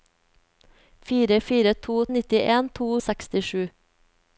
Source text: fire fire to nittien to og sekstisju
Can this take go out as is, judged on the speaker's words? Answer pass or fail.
pass